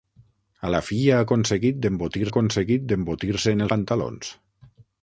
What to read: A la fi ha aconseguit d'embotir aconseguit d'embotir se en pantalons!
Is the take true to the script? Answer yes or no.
yes